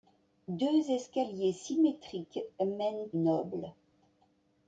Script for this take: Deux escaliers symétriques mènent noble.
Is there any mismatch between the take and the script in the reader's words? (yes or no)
no